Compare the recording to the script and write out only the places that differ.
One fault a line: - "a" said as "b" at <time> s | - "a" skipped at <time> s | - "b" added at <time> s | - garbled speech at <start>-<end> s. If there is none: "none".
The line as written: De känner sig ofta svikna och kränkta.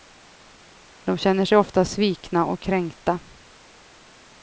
none